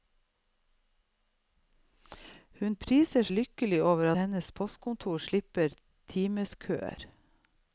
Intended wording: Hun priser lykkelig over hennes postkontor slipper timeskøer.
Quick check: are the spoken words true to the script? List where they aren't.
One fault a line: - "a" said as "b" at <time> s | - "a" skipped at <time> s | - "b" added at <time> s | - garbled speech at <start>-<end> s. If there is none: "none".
none